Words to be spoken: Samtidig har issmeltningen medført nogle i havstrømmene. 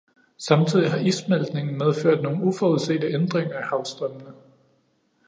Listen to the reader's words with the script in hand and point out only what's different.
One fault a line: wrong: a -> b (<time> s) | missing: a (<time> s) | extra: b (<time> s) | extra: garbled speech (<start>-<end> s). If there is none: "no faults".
extra: uforudsete ændringer (2.4 s)